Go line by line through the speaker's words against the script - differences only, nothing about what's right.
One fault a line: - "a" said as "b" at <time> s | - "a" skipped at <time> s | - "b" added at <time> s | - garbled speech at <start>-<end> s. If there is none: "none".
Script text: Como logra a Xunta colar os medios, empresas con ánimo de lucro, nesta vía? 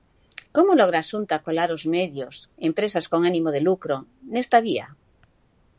none